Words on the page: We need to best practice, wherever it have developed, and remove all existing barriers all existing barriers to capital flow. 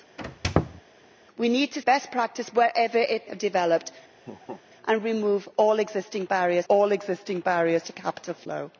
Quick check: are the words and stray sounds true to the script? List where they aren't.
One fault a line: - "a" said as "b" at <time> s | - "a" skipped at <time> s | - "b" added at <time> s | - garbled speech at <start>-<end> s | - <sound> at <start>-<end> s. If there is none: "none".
- squeak at 0.2-0.8 s
- laugh at 4.2-4.6 s